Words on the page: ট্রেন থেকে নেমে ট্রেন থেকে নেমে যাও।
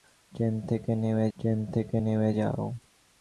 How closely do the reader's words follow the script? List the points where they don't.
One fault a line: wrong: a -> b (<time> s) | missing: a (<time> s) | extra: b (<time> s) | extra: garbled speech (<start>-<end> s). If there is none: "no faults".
no faults